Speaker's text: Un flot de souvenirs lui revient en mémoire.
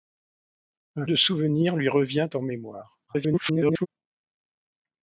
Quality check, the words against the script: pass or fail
fail